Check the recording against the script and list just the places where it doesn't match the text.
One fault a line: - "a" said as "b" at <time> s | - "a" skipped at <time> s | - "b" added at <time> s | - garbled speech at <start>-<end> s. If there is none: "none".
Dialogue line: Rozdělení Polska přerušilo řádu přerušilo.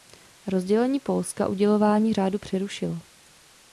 - "přerušilo" said as "udělování" at 1.5 s